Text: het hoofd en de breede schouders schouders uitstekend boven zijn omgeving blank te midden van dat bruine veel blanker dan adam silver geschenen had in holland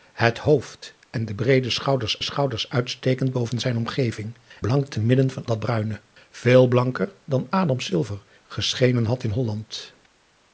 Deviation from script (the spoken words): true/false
false